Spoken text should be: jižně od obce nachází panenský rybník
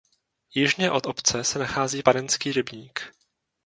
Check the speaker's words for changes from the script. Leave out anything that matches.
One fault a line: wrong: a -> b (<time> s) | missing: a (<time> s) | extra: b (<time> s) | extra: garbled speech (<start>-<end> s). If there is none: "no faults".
extra: se (1.4 s)